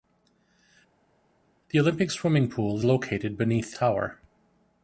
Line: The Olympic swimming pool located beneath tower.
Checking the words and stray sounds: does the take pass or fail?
pass